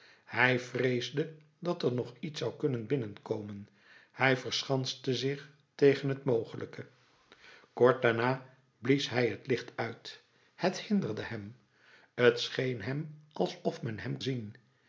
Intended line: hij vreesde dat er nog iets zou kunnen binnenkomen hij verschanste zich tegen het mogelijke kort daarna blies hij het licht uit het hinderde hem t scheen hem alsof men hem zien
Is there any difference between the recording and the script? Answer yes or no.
no